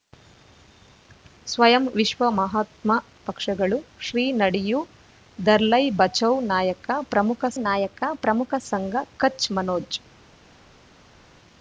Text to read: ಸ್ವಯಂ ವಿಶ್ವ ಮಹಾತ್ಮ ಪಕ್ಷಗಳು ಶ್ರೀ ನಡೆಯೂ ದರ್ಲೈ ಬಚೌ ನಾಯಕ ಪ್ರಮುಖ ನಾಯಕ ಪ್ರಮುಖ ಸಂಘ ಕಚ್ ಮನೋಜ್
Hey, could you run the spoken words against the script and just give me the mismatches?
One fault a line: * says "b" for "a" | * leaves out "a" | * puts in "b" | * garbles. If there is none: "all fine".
all fine